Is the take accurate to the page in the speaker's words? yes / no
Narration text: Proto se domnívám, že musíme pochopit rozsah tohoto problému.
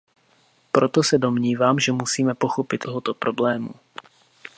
no